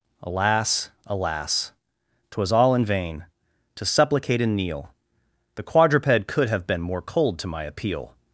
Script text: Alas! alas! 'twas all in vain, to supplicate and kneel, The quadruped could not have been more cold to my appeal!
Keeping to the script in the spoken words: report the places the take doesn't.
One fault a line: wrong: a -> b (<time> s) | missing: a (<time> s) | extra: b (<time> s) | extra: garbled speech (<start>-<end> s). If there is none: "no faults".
missing: not (6.5 s)